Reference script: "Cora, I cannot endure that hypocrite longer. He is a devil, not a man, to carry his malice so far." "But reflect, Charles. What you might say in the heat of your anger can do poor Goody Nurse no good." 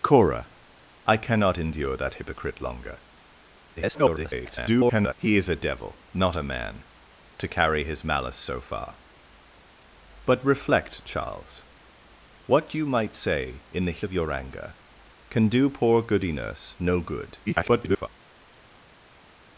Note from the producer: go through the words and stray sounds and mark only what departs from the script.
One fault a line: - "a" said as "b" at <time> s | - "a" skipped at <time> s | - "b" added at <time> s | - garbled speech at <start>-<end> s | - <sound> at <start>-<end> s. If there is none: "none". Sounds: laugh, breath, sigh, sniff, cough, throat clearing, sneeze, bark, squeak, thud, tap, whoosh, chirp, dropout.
- garbled speech at 3.8-5.1 s
- "heat" skipped at 14.0 s
- garbled speech at 17.5-18.1 s